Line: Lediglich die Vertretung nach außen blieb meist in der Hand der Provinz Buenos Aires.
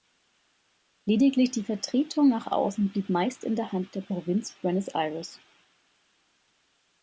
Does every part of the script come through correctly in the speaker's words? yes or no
yes